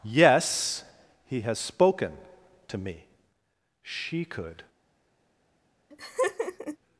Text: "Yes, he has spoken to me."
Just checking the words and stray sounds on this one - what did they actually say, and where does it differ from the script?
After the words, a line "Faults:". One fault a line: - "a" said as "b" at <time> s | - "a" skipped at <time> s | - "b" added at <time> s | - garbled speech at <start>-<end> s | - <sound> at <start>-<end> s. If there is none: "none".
"Yes, he has spoken to me." She could
Faults:
- "She could" added at 3.8 s
- laugh at 5.9-6.8 s